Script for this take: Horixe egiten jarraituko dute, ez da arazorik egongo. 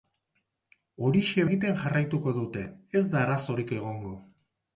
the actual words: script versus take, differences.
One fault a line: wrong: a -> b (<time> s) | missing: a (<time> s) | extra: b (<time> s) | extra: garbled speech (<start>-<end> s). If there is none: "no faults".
no faults